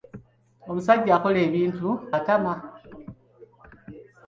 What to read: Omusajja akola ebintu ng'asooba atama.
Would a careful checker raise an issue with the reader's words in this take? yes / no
yes